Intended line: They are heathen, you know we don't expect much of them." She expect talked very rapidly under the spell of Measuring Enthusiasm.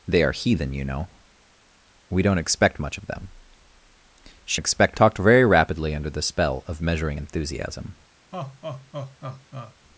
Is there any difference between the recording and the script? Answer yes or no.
no